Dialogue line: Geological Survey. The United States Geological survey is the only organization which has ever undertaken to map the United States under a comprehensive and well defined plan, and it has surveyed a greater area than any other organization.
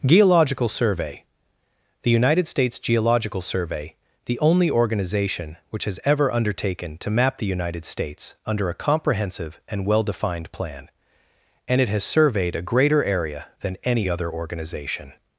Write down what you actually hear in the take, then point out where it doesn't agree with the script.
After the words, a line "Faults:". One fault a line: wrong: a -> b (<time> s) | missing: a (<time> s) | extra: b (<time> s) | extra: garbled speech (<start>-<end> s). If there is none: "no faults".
Geological Survey. The United States Geological survey the only organization which has ever undertaken to map the United States under a comprehensive and well defined plan, and it has surveyed a greater area than any other organization.
Faults:
missing: is (4.0 s)